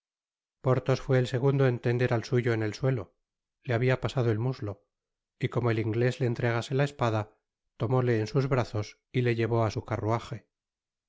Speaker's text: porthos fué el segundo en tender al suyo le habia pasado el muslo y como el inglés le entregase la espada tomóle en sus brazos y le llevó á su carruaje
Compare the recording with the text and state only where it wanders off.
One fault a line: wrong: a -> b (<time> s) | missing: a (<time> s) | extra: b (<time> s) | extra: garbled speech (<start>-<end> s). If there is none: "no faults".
extra: en el suelo (2.5 s)